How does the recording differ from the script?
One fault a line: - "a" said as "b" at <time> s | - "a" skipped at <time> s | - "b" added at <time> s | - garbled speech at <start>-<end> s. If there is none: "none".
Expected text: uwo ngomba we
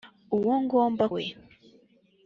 none